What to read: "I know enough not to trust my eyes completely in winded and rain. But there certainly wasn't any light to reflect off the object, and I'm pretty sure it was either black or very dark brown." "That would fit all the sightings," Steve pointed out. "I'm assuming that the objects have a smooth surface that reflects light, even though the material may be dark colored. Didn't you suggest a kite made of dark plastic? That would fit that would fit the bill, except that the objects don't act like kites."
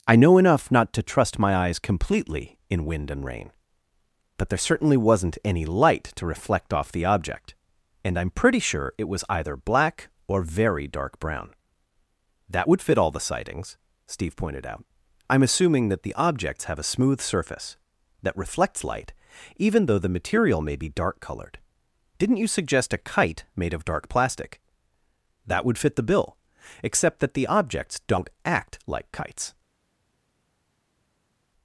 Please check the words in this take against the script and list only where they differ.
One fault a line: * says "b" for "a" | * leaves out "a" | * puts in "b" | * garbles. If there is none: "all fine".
* says "wind" for "winded"
* leaves out "that would fit"